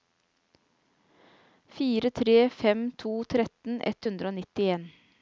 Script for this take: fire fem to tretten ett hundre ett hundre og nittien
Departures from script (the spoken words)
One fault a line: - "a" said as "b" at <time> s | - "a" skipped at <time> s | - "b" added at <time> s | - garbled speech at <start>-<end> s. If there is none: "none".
- "tre" added at 2.1 s
- "ett hundre" skipped at 4.3 s